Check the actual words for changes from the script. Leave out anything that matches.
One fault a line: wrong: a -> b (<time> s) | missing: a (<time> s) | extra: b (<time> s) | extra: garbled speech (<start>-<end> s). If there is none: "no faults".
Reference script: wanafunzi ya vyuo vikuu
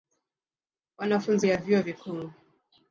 no faults